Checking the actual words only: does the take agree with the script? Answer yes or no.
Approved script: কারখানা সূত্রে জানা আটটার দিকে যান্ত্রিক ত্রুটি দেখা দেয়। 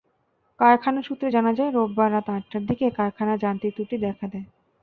no